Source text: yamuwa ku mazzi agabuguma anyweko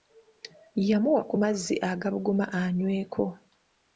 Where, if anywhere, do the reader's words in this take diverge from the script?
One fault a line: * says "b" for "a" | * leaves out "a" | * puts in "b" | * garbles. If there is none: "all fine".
all fine